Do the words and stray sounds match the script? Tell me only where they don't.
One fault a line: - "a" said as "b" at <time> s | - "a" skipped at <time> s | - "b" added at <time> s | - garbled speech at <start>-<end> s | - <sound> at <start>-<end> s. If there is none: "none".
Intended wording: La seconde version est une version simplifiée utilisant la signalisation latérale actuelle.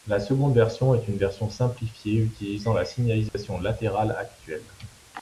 - dropout at 3.3-3.3 s